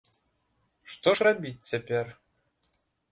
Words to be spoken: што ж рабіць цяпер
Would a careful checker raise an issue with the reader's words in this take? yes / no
no